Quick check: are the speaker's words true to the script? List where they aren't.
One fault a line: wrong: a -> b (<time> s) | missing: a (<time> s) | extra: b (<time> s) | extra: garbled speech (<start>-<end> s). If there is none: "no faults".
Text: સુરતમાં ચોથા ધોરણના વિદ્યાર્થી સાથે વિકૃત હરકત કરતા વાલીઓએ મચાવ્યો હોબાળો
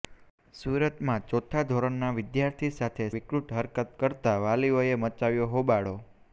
no faults